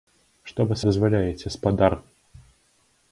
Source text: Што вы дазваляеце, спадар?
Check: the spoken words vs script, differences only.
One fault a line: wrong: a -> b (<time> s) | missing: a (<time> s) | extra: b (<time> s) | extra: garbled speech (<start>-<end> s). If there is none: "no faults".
no faults